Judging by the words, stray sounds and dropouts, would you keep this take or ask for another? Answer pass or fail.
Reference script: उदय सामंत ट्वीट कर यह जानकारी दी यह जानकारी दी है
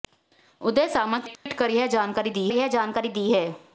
fail